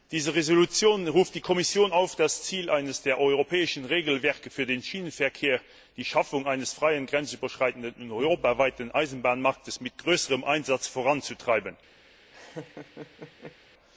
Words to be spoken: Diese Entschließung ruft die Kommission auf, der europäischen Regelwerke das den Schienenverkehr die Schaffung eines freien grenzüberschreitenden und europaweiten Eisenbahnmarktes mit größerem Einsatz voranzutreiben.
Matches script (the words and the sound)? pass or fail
fail